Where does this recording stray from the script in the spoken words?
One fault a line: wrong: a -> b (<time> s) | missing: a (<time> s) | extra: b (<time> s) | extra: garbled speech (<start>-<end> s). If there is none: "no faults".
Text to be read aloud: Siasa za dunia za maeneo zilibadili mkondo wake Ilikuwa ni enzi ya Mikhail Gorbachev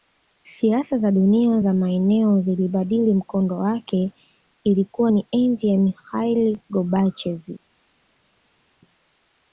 no faults